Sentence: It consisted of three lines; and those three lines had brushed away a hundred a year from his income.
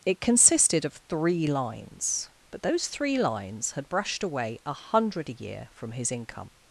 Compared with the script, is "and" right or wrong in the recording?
wrong